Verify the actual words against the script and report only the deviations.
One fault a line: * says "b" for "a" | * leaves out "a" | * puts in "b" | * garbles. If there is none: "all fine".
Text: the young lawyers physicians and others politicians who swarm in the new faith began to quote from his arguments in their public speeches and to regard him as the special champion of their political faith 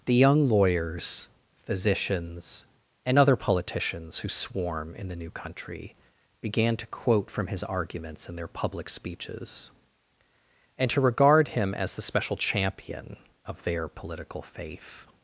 * says "other" for "others"
* says "country" for "faith"